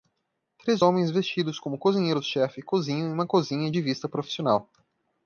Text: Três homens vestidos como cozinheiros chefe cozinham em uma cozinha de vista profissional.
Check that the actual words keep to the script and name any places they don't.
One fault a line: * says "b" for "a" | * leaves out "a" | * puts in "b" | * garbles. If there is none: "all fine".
all fine